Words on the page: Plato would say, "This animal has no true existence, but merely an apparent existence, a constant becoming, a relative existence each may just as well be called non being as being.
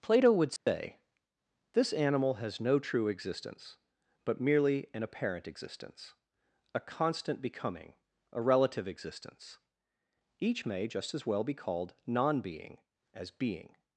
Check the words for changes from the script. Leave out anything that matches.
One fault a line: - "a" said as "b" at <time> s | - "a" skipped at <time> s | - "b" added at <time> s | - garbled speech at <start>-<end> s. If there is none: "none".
none